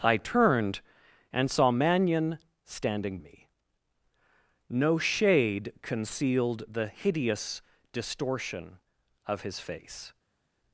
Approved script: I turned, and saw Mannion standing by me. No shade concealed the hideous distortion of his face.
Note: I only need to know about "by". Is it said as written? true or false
false